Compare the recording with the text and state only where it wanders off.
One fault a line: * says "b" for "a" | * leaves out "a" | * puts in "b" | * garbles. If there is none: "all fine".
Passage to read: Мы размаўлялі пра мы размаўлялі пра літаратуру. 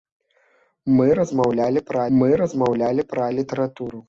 all fine